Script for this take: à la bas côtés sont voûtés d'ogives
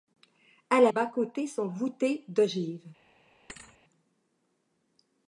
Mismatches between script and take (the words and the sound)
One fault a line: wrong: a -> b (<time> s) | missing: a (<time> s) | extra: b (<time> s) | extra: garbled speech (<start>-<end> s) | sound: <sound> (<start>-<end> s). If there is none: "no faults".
sound: thud (3.5-3.8 s)